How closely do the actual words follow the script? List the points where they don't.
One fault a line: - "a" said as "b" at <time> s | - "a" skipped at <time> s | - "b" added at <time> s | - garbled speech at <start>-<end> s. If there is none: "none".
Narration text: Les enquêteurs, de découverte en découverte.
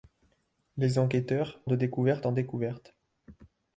none